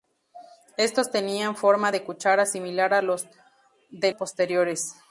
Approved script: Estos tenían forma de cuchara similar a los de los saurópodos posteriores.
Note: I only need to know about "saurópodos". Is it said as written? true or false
false